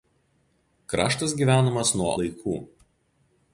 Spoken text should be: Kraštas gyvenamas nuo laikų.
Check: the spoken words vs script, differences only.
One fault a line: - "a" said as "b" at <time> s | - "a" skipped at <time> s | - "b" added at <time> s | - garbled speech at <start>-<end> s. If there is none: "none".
none